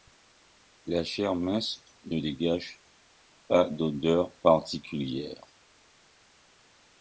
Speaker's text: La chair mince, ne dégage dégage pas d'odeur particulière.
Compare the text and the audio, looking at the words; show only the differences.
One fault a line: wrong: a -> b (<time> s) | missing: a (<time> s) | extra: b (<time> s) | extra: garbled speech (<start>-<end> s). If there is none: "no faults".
missing: dégage (2.8 s)